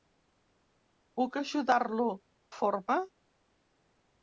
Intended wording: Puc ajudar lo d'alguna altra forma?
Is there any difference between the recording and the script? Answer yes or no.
yes